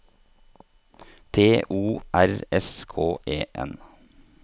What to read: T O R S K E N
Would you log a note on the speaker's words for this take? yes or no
no